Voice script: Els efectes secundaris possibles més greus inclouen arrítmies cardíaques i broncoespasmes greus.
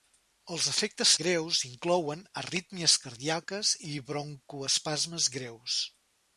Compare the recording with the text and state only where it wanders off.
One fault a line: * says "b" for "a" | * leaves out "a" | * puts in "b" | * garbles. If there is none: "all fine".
* leaves out "secundaris possibles més"